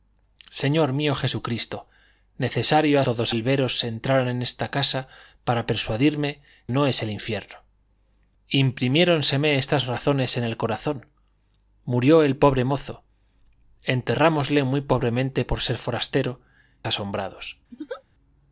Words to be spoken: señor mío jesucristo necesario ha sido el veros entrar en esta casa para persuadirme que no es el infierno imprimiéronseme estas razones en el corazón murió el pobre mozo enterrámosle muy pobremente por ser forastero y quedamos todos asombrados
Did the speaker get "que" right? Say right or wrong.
wrong